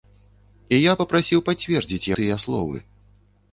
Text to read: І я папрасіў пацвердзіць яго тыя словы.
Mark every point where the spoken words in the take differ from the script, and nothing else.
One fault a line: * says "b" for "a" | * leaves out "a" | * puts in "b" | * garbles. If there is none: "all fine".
* leaves out "яго"